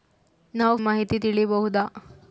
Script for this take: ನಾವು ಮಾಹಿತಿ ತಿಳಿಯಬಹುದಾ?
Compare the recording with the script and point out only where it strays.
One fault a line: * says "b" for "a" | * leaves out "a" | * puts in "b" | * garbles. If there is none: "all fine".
all fine